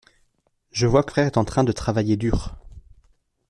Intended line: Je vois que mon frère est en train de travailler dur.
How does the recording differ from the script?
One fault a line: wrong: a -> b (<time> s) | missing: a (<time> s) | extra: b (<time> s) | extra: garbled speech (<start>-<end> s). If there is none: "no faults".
missing: mon (1.1 s)